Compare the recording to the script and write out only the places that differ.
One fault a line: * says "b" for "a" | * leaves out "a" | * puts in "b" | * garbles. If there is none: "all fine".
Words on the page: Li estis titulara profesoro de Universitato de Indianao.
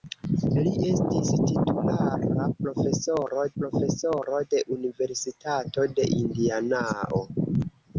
* puts in "profesoro"